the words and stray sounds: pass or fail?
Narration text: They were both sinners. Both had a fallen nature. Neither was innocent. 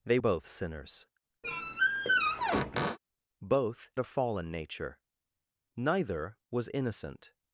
fail